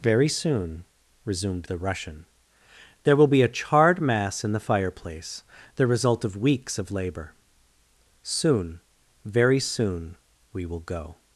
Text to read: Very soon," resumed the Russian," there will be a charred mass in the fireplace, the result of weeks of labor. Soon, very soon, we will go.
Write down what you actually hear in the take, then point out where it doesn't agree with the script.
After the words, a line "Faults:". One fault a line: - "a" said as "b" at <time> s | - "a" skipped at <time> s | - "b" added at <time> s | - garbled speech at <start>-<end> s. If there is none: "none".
Very soon," resumed the Russian," there will be a charred mass in the fireplace, the result of weeks of labor. Soon, very soon, we will go.
Faults:
none